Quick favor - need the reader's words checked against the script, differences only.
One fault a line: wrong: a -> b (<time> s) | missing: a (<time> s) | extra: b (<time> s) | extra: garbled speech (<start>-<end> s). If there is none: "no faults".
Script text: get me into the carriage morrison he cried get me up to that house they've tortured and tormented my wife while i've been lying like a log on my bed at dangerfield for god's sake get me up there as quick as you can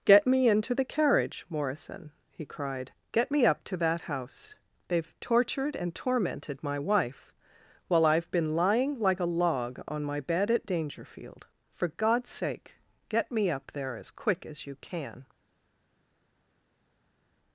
no faults